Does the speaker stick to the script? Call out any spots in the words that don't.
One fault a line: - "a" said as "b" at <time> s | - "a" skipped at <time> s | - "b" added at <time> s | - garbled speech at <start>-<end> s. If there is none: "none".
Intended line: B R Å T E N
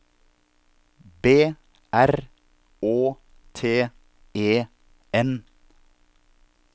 none